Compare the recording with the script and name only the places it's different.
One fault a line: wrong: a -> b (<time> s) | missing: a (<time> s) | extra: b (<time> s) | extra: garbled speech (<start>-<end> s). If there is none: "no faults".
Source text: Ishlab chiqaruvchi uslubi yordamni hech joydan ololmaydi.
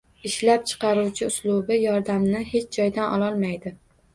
no faults